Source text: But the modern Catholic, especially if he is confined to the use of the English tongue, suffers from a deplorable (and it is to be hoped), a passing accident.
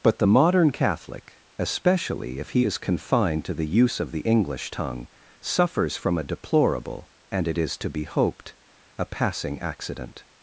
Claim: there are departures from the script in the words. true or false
false